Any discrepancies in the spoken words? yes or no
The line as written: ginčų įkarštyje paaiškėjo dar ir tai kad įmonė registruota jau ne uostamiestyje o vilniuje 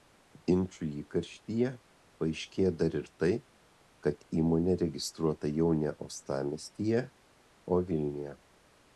no